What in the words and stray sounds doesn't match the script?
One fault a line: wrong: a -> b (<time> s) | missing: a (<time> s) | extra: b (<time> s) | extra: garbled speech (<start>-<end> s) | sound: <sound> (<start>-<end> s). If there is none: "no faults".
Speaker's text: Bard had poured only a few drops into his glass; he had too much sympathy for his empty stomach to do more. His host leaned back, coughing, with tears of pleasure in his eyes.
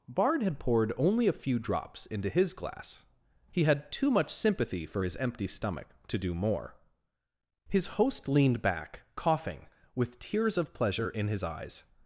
no faults